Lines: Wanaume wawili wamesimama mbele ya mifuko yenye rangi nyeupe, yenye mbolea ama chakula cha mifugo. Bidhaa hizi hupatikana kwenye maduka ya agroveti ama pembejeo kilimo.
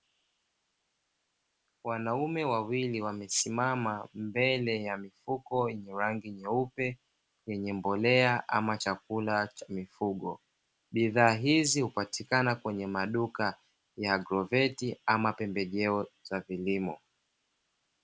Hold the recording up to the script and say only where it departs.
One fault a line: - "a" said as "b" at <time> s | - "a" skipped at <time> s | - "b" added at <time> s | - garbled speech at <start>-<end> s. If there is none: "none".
- "za" added at 16.2 s